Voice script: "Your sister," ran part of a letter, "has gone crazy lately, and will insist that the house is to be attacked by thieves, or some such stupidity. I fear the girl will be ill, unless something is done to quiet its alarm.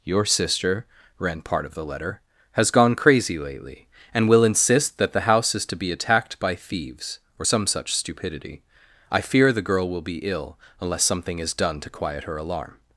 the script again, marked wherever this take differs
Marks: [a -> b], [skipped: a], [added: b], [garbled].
"Your sister," ran part of [a -> the] letter, "has gone crazy lately, and will insist that the house is to be attacked by thieves, or some such stupidity. I fear the girl will be ill, unless something is done to quiet [its -> her] alarm.